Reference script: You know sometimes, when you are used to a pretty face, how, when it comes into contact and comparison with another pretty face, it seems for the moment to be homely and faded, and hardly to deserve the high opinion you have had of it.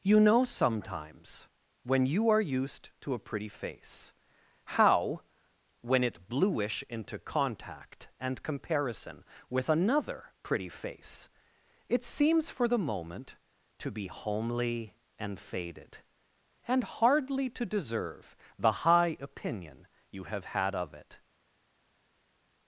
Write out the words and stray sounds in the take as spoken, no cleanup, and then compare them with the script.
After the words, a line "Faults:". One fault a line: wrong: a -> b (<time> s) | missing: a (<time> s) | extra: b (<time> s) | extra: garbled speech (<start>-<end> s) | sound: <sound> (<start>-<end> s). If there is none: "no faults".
You know sometimes, when you are used to a pretty face, how, when it bluish into contact and comparison with another pretty face, it seems for the moment to be homely and faded, and hardly to deserve the high opinion you have had of it.
Faults:
wrong: comes -> bluish (6.3 s)